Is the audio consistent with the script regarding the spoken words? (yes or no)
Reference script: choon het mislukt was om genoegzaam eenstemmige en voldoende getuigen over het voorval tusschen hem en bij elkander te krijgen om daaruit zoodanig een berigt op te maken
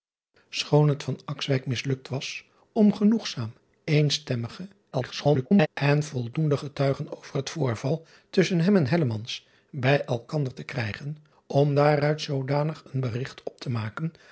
no